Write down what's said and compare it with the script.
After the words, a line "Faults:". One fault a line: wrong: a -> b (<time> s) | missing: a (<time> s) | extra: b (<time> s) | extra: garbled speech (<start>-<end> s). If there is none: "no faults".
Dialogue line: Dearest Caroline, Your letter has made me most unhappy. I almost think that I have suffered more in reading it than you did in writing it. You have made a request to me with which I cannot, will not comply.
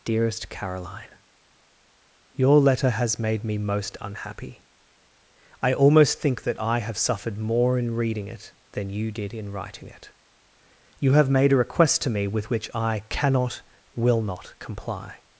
Dearest Caroline, Your letter has made me most unhappy. I almost think that I have suffered more in reading it than you did in writing it. You have made a request to me with which I cannot, will not comply.
Faults:
no faults